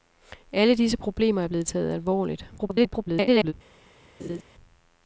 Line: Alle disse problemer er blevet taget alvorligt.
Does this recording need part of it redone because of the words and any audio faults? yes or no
yes